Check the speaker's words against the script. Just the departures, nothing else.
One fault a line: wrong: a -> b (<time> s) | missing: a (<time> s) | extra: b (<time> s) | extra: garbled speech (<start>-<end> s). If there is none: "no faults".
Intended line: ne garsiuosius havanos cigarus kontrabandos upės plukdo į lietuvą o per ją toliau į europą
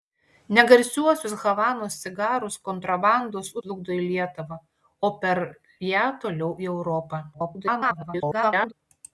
missing: upės (3.5 s)
extra: garbled speech (7.3-8.7 s)